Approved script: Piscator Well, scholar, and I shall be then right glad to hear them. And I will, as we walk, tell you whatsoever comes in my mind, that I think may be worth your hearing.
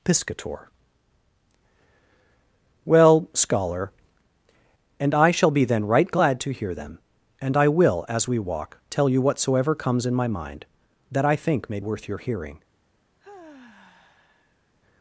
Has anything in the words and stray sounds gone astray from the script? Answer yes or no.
yes